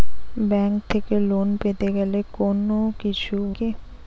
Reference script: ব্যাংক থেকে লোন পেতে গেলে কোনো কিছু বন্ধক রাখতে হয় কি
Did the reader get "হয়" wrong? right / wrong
wrong